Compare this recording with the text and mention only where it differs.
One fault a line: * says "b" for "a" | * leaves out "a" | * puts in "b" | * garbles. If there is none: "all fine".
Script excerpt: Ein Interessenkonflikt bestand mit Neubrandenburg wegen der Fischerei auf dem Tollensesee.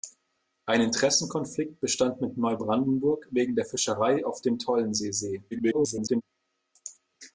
* garbles